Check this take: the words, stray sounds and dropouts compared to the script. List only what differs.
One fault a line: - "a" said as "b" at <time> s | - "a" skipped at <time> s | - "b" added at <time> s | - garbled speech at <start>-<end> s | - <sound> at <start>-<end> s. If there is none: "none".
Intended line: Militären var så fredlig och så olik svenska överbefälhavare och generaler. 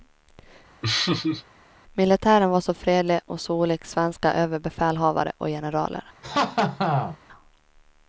- laugh at 0.8-1.4 s
- laugh at 6.2-7.2 s